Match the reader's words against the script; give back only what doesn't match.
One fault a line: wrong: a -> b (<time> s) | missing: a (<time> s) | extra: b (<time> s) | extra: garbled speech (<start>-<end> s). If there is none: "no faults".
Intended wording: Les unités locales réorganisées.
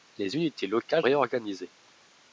no faults